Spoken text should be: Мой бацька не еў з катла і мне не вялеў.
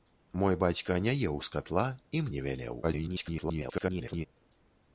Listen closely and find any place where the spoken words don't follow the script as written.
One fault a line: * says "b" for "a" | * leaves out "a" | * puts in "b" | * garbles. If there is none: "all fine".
* leaves out "мне"
* garbles